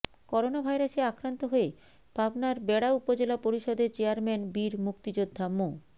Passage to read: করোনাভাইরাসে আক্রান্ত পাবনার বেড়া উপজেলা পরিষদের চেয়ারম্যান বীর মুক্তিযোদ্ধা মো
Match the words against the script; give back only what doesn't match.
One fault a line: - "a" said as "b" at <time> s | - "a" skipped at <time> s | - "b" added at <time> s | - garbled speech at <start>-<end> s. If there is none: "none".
- "হয়ে" added at 1.5 s